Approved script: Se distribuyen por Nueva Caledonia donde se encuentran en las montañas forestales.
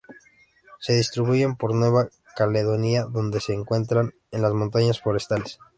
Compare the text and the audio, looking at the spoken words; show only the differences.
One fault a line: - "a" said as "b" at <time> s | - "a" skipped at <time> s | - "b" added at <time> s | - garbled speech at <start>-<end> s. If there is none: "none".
none